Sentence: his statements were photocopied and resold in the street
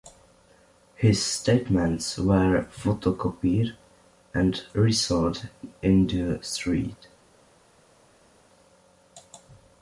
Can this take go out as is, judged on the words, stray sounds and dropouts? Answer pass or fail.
pass